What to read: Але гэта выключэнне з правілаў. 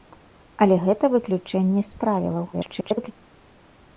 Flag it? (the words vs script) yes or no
yes